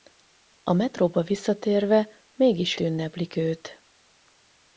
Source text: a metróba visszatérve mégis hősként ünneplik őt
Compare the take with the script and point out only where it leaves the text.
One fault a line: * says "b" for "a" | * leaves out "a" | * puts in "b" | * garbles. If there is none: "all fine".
* leaves out "hősként"